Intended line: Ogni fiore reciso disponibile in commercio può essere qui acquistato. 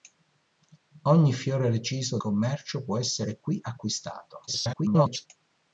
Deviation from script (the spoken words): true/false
true